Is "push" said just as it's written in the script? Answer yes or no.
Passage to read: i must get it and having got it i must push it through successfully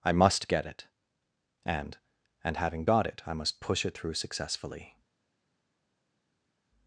yes